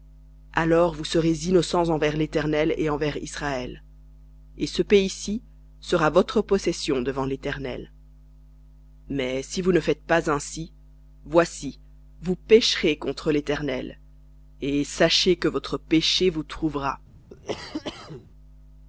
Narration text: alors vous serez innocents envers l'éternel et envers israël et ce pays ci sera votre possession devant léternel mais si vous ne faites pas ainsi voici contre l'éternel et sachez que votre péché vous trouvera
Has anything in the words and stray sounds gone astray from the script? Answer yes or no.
yes